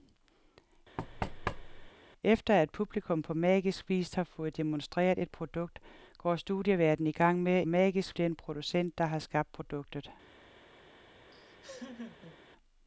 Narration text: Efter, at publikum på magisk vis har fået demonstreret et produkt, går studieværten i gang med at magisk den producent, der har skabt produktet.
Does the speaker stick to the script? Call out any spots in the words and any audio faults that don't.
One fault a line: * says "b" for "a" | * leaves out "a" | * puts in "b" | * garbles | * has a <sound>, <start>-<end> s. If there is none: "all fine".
* has a thud, 1.0-1.9 s
* has a laugh, 11.3-12.4 s